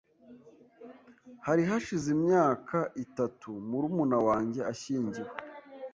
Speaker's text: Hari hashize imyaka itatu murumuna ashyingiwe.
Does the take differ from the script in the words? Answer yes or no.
yes